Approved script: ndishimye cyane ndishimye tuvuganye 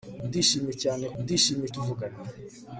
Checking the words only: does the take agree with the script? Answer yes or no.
yes